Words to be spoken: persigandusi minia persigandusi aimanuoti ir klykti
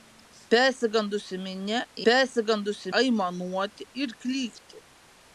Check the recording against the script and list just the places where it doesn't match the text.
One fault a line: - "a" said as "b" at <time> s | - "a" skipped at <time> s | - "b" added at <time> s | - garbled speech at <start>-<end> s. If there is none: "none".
none